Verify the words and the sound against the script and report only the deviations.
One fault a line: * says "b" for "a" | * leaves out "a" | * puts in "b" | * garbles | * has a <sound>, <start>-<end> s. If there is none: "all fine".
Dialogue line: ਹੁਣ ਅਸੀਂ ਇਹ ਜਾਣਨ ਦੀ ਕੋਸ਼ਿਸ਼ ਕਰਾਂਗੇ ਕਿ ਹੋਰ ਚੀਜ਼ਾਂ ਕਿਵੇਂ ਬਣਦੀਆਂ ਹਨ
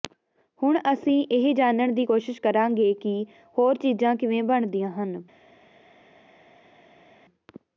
all fine